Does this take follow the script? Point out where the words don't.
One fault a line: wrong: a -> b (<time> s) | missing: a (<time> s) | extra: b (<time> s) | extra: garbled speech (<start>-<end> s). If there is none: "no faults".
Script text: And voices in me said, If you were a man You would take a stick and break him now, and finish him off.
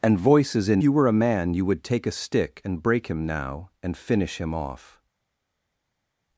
missing: me said If (0.8 s)